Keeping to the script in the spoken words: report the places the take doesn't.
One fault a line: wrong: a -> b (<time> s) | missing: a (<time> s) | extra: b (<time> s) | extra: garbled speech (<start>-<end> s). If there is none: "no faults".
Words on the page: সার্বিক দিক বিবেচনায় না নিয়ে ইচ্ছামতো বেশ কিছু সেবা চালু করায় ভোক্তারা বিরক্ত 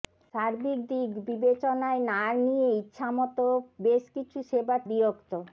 missing: চালু করায় ভোক্তারা (4.8 s)